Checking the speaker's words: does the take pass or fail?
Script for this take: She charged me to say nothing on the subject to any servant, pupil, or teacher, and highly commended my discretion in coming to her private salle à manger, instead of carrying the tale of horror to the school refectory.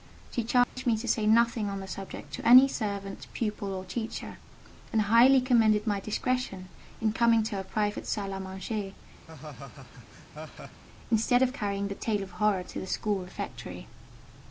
pass